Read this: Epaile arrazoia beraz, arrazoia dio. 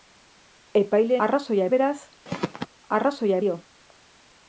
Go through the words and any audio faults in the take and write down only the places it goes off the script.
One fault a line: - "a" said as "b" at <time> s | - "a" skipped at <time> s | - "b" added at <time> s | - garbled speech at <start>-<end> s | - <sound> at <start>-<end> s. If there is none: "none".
- throat clearing at 2.3-2.7 s